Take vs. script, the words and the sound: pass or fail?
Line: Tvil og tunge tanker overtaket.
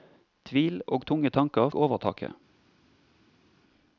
pass